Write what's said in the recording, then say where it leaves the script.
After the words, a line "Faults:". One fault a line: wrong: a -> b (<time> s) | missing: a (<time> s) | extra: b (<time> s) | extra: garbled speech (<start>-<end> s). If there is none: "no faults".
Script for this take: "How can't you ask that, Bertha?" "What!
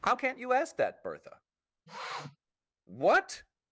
"How can't you ask that, Bertha?" "What!
Faults:
no faults